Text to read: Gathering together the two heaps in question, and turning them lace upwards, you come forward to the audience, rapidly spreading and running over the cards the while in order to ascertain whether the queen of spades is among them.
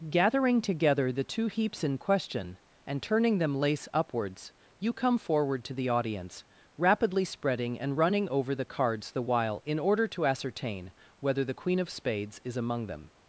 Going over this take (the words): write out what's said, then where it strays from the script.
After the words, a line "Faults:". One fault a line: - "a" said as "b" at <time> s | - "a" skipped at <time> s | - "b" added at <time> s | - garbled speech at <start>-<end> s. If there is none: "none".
Gathering together the two heaps in question, and turning them lace upwards, you come forward to the audience, rapidly spreading and running over the cards the while in order to ascertain whether the queen of spades is among them.
Faults:
none